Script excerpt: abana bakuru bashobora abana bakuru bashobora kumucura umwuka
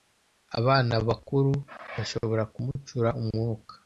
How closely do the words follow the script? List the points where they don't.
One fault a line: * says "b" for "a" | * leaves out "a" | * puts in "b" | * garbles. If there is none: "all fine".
* leaves out "abana bakuru bashobora"